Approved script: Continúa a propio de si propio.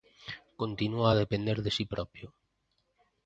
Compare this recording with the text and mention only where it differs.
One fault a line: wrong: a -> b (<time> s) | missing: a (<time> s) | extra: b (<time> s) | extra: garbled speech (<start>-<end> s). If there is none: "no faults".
wrong: propio -> depender (1.2 s)